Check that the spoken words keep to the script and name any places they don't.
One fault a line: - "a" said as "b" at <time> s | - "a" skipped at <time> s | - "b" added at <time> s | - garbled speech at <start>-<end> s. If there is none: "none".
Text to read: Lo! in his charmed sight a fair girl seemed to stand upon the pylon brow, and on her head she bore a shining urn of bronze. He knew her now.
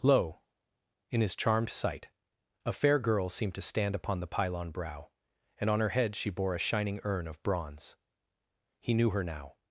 none